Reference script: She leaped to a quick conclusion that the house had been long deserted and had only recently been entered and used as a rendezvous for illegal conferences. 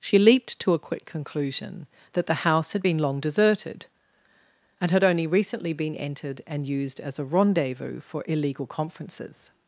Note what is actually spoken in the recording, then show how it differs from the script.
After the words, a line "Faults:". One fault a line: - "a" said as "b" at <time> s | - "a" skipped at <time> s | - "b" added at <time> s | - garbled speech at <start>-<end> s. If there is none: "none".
She leaped to a quick conclusion that the house had been long deserted and had only recently been entered and used as a rendezvous for illegal conferences.
Faults:
none